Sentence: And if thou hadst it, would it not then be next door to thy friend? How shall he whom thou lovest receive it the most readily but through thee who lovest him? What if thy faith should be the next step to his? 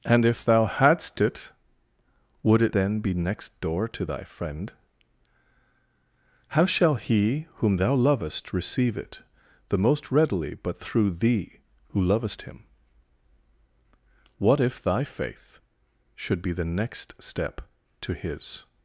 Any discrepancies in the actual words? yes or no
yes